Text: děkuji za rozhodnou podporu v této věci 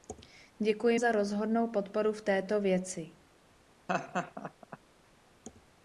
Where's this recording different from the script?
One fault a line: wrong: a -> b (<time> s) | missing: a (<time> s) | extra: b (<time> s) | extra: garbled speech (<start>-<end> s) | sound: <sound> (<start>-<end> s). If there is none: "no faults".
sound: laugh (3.9-4.8 s)